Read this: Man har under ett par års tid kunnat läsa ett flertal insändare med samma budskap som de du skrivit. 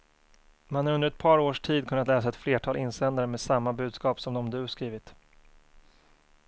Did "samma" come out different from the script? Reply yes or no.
no